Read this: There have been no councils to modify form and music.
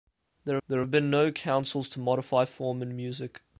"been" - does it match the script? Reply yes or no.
yes